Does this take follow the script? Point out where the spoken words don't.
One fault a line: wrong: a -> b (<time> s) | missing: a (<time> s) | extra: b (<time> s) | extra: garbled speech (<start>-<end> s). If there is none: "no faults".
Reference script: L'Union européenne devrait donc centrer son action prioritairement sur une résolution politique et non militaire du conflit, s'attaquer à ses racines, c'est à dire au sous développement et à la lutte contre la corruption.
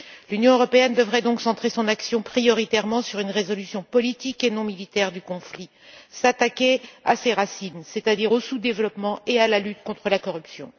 no faults